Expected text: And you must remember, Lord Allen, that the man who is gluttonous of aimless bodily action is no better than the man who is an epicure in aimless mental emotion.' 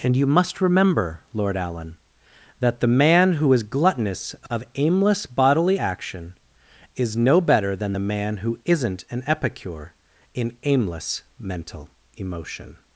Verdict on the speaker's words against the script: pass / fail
fail